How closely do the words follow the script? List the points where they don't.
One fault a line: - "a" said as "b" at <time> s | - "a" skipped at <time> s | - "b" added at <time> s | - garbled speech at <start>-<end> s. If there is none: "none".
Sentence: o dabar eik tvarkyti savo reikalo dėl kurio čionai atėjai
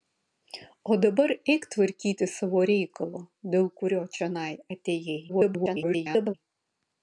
- garbled speech at 5.3-6.3 s